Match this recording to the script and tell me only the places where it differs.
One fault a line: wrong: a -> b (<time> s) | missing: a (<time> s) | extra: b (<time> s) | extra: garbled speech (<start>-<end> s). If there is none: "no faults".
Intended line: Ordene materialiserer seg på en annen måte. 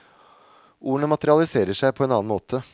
no faults